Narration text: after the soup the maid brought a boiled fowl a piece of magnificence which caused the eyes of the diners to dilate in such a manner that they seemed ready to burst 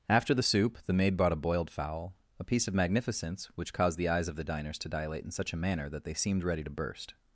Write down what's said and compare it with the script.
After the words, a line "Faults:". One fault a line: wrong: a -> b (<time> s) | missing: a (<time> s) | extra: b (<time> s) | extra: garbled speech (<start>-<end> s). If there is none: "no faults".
after the soup the maid brought a boiled fowl a piece of magnificence which caused the eyes of the diners to dilate in such a manner that they seemed ready to burst
Faults:
no faults